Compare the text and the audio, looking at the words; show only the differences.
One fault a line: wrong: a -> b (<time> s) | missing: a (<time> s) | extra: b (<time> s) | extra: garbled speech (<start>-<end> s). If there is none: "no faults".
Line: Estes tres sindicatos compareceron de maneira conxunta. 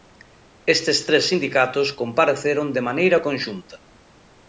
no faults